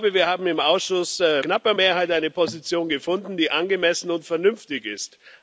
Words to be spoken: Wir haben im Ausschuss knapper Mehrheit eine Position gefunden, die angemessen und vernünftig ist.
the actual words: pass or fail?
pass